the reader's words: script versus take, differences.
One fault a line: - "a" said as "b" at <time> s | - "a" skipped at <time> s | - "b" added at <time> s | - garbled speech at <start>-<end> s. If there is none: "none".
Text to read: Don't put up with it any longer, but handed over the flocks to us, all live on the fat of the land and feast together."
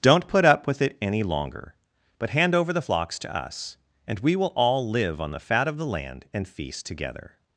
- "handed" said as "hand" at 2.3 s
- "and we will" added at 4.1 s